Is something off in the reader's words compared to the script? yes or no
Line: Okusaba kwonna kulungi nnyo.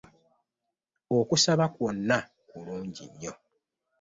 no